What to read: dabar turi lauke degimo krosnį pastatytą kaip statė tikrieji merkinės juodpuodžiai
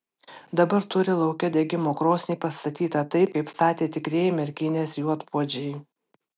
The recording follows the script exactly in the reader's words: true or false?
false